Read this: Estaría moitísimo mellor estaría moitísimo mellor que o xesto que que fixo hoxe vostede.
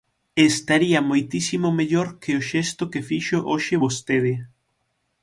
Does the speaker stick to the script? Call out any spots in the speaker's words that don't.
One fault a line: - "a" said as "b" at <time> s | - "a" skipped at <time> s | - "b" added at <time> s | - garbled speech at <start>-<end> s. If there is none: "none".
- "estaría moitísimo mellor" skipped at 2.1 s
- "que" skipped at 3.0 s